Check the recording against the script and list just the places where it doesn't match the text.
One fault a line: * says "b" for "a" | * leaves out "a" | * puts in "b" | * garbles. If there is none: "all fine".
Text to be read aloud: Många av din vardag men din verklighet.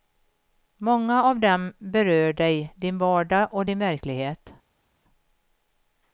* puts in "dem berör dig"
* says "och" for "men"